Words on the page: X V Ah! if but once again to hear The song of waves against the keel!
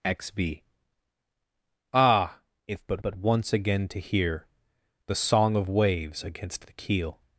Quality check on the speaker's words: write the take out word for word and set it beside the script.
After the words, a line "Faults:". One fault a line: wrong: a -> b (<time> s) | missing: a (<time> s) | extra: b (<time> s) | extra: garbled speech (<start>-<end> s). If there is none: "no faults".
X V Ah! if but but once again to hear The song of waves against the keel!
Faults:
extra: but (3.0 s)